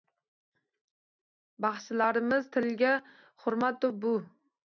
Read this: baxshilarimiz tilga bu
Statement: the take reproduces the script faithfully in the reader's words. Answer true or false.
false